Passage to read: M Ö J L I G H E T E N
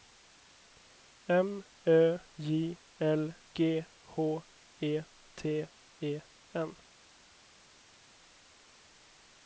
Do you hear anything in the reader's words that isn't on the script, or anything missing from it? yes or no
yes